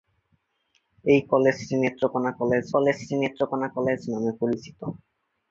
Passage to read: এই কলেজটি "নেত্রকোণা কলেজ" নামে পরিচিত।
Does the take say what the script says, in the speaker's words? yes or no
no